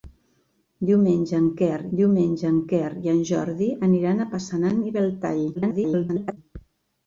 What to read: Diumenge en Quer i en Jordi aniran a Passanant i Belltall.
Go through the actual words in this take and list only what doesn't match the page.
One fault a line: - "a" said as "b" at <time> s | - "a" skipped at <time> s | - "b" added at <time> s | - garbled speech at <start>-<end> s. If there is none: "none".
- "diumenge en Quer" added at 2.0 s
- garbled speech at 5.5-6.4 s